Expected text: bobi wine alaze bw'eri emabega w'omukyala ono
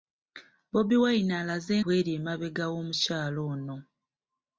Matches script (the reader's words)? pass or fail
pass